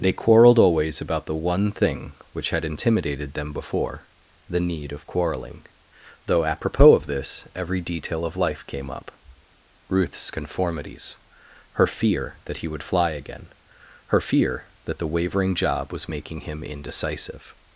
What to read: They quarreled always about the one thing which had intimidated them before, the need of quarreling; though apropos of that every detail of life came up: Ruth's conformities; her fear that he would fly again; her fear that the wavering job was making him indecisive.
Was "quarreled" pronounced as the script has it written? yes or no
yes